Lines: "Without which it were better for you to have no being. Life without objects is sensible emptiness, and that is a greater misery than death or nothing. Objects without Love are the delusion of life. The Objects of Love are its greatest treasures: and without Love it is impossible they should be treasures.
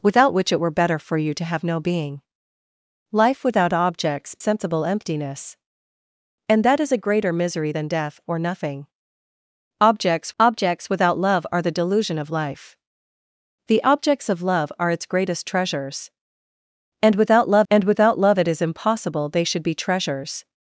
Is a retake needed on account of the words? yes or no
yes